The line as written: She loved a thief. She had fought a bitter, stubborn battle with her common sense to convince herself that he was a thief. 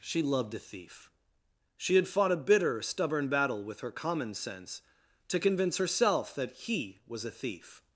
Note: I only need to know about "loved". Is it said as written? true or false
true